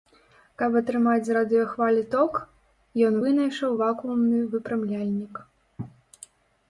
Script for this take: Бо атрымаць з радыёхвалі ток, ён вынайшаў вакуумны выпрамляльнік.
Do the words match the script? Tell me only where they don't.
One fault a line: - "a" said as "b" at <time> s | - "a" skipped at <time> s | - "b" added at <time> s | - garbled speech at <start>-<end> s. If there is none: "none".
- "Бо" said as "Каб" at 0.6 s